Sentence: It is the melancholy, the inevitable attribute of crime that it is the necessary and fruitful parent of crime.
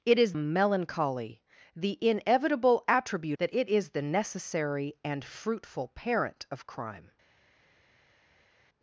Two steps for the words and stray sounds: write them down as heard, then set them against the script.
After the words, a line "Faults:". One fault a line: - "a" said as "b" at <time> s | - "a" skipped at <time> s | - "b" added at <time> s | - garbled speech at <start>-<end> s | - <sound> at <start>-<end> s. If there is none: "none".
It is melancholy, the inevitable attribute that it is the necessary and fruitful parent of crime.
Faults:
- "the" skipped at 0.3 s
- "of crime" skipped at 3.4 s